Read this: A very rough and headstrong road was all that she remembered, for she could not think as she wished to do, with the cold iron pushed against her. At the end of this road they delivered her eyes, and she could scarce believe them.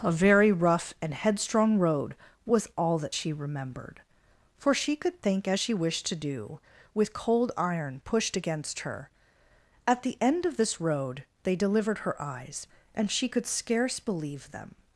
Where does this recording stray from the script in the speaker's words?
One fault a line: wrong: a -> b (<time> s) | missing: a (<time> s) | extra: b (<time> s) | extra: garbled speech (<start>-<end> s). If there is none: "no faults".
missing: not (5.2 s)
missing: the (7.1 s)